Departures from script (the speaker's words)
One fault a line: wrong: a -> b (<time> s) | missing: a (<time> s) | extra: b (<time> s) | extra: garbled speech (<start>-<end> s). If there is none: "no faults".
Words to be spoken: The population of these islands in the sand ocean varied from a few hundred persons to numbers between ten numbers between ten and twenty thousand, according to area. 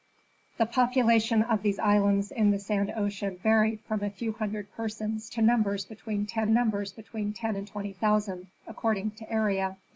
no faults